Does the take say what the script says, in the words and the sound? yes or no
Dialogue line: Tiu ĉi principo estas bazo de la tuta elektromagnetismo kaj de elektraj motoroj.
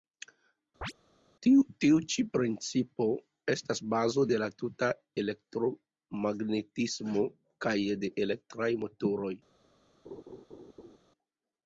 no